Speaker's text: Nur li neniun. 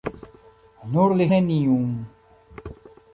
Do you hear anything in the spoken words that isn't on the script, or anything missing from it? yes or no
no